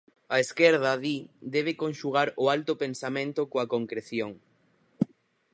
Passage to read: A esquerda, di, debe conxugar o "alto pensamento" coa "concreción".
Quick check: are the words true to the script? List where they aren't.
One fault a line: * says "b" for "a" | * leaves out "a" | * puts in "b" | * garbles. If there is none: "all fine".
all fine